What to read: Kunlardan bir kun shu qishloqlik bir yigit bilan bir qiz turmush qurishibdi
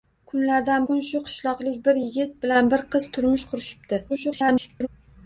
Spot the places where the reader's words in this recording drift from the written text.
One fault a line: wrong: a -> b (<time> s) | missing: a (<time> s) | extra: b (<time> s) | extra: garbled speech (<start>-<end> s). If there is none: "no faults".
missing: bir (0.9 s)
extra: garbled speech (4.1-4.9 s)